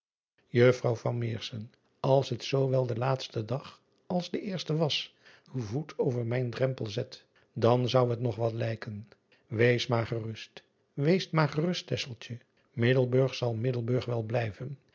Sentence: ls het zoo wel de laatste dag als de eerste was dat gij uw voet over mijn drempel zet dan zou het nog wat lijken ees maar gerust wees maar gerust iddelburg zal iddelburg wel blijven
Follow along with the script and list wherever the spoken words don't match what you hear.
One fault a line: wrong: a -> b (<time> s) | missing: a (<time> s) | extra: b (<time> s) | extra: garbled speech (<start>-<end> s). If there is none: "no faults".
missing: dat gij (5.2 s)